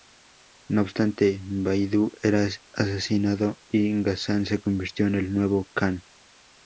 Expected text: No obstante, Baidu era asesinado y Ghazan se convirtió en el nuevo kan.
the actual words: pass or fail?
pass